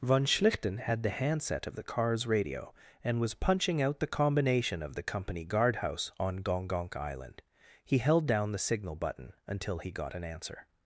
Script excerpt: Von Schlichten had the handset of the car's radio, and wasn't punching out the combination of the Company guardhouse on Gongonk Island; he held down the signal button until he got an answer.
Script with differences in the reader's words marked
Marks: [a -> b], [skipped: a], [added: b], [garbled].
Von Schlichten had the handset of the car's radio, and [wasn't -> was] punching out the combination of the Company guardhouse on Gongonk Island; he held down the signal button until he got an answer.